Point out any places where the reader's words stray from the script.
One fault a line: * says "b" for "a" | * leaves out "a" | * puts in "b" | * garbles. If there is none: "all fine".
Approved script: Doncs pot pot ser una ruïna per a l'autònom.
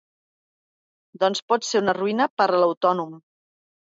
* leaves out "pot"